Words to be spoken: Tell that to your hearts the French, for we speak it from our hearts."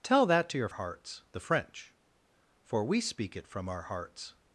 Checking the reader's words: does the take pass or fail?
pass